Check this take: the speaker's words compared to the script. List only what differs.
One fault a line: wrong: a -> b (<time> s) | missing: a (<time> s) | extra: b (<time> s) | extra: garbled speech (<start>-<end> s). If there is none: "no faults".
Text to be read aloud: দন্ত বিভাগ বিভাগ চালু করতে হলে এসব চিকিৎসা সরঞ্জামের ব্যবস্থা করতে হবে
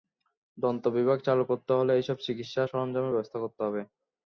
missing: বিভাগ (1.2 s)